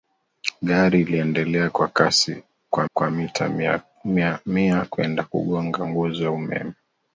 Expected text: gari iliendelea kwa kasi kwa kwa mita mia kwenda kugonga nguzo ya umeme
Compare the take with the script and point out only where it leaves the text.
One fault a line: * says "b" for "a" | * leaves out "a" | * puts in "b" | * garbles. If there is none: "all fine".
all fine